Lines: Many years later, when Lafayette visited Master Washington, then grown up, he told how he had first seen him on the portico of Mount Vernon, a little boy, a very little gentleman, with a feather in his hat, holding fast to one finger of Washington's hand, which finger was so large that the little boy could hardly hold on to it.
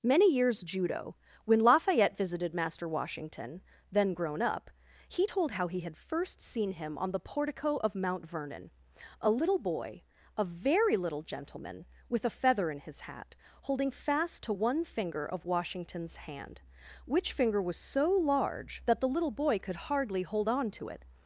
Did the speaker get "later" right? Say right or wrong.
wrong